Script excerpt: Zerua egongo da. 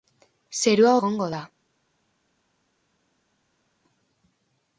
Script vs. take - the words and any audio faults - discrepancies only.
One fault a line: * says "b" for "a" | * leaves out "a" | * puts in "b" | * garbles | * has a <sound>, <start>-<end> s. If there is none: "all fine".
all fine